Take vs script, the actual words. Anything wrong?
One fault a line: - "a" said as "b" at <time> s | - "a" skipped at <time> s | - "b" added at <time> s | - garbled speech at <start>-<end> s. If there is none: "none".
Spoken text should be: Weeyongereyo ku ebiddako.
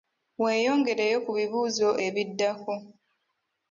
- "bibuuzo" added at 1.3 s